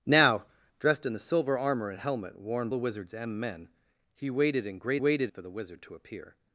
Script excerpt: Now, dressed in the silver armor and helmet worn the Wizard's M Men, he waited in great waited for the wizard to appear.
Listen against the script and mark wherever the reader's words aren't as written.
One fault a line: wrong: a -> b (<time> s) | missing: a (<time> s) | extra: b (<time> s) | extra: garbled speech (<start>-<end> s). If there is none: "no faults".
no faults